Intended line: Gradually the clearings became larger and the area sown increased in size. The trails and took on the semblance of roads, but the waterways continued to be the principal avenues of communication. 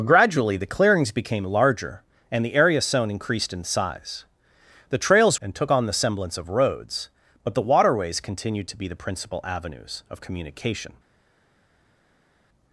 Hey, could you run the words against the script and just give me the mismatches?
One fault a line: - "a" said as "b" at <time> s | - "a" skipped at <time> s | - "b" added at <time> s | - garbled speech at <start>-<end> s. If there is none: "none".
none